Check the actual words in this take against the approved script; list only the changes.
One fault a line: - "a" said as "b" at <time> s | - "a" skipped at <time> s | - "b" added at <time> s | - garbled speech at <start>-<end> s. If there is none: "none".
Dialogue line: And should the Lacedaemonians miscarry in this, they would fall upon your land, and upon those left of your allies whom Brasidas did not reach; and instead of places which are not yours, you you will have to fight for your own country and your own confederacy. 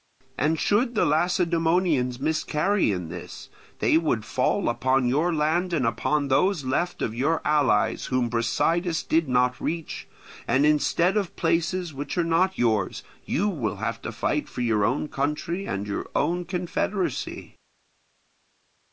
- "you" skipped at 13.5 s